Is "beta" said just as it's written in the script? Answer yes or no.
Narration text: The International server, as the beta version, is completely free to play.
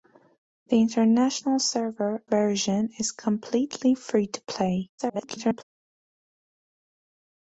no